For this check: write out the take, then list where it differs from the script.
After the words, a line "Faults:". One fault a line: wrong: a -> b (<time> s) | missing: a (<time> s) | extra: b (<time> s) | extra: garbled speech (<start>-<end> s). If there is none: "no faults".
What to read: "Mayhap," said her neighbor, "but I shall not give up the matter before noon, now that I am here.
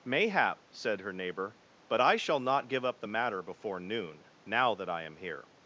"Mayhap," said her neighbor, "but I shall not give up the matter before noon, now that I am here.
Faults:
no faults